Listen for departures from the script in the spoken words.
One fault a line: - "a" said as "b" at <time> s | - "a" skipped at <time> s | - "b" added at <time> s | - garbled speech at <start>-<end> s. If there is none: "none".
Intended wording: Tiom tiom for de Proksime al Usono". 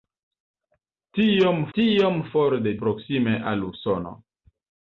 none